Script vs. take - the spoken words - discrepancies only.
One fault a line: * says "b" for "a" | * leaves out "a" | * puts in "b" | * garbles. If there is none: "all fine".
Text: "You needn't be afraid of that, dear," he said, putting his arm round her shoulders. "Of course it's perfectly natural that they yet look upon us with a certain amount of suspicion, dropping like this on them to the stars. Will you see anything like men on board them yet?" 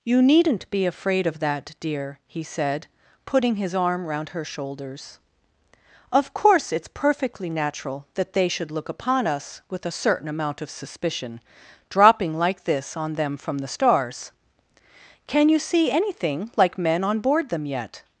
* says "should" for "yet"
* says "from" for "to"
* says "Can" for "Will"